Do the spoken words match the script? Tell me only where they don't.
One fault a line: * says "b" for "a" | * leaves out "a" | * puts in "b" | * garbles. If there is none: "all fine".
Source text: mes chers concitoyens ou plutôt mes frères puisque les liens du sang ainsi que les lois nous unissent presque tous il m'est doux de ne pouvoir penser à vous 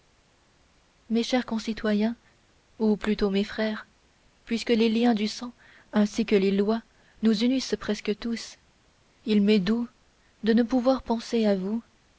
all fine